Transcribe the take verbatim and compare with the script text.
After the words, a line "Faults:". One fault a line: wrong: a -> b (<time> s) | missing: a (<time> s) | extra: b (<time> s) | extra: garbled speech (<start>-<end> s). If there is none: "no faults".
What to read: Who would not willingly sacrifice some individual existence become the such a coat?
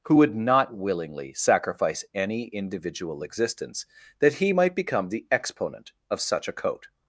Who would not willingly sacrifice any individual existence that he might become the exponent of such a coat?
Faults:
wrong: some -> any (2.1 s)
extra: that he might (4.2 s)
extra: exponent of (5.3 s)